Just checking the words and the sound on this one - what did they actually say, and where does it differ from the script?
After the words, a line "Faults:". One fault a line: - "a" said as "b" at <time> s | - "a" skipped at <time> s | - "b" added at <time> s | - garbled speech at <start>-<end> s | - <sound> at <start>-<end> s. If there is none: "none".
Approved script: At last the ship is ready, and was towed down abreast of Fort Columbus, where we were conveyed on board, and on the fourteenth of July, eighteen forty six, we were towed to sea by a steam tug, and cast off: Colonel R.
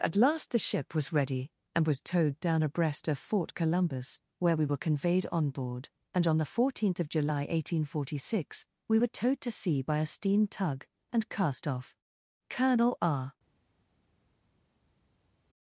At last the ship was ready, and was towed down abreast of Fort Columbus, where we were conveyed on board, and on the fourteenth of July, eighteen forty six, we were towed to sea by a steam tug, and cast off: Colonel R.
Faults:
- "is" said as "was" at 0.9 s